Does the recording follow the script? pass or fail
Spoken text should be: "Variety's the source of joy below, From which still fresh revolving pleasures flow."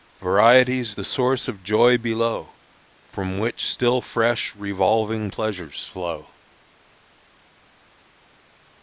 pass